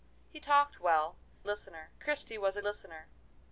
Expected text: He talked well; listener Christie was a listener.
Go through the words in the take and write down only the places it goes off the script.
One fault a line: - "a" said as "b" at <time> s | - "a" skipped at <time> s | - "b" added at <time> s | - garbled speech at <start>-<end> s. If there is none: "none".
none